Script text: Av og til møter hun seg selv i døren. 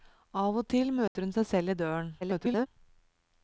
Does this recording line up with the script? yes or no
no